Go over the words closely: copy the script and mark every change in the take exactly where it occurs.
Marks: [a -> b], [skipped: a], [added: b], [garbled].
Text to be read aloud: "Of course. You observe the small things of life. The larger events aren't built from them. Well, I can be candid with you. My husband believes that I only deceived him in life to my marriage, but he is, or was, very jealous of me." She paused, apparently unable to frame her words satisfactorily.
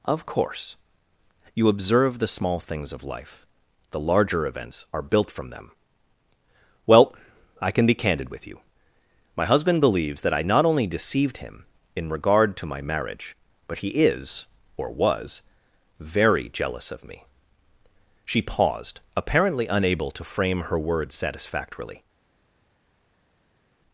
"Of course. You observe the small things of life. The larger events [aren't -> are] built from them. Well, I can be candid with you. My husband believes that I [added: not] only deceived him in [life -> regard] to my marriage, but he is, or was, very jealous of me." She paused, apparently unable to frame her words satisfactorily.